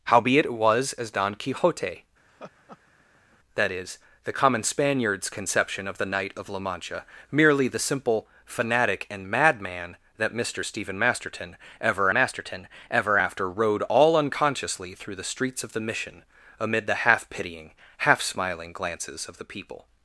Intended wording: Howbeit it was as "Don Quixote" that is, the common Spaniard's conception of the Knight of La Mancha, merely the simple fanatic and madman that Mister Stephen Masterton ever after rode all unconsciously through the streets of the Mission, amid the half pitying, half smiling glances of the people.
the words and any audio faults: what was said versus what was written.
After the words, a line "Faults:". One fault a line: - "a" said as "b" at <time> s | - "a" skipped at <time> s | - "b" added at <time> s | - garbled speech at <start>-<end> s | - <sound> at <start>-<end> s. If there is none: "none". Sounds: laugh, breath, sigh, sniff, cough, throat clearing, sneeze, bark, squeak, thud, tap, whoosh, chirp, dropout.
Howbeit it was as "Don Quixote" that is, the common Spaniard's conception of the Knight of La Mancha, merely the simple fanatic and madman that Mister Stephen Masterton ever Masterton ever after rode all unconsciously through the streets of the Mission, amid the half pitying, half smiling glances of the people.
Faults:
- laugh at 2.3-3.4 s
- "Masterton ever" added at 12.1 s